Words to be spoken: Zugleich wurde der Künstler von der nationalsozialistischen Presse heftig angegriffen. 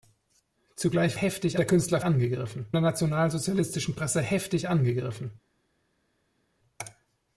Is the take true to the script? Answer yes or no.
no